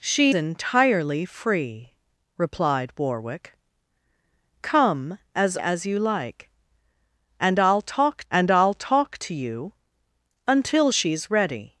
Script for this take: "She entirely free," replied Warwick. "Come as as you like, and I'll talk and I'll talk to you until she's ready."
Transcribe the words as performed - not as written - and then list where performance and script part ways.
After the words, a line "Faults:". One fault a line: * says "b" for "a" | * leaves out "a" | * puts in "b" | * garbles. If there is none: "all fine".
"She entirely free," replied Warwick. "Come as as you like, and I'll talk and I'll talk to you until she's ready."
Faults:
all fine